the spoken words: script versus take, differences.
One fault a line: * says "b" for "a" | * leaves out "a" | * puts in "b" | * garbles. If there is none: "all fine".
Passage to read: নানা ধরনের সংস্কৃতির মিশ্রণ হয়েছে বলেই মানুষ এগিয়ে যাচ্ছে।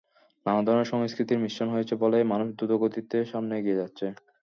* puts in "দ্রুতগতিতে সামনে"